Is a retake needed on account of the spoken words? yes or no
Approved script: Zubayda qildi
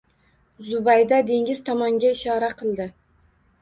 yes